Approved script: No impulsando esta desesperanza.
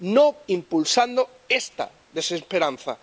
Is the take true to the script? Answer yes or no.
yes